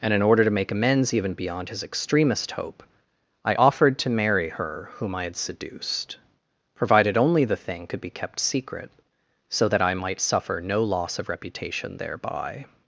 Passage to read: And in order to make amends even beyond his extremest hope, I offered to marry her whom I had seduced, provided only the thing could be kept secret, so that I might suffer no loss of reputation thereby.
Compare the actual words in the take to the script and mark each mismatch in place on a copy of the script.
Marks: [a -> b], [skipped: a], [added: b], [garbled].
And in order to make amends even beyond his extremest hope, I offered to marry her whom I had seduced, provided only the thing could be kept secret, so that I might suffer no loss of reputation thereby.